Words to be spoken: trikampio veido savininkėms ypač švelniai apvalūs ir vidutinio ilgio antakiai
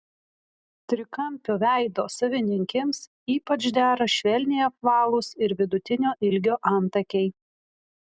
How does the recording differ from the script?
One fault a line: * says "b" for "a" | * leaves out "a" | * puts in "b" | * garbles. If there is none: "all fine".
* puts in "dera"